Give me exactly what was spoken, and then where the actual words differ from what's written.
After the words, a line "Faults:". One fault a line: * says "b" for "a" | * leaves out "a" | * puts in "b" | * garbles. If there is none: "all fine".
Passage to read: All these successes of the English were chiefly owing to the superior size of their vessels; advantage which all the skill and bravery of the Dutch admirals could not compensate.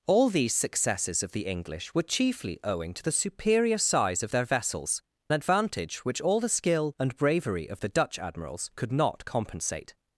All these successes of the English were chiefly owing to the superior size of their vessels; advantage which all the skill and bravery of the Dutch admirals could not compensate.
Faults:
all fine